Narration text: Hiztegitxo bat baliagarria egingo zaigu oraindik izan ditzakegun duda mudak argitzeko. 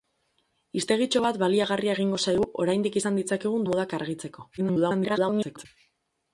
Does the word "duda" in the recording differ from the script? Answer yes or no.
yes